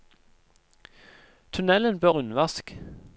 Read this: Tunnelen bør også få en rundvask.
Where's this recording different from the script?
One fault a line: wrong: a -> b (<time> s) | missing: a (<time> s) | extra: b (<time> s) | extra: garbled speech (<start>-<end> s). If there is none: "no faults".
missing: også få en (2.1 s)